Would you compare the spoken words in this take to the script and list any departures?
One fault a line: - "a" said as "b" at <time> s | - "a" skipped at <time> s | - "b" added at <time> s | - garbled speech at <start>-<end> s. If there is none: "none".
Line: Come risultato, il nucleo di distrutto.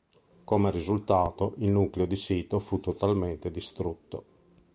- "sito fu totalmente" added at 2.1 s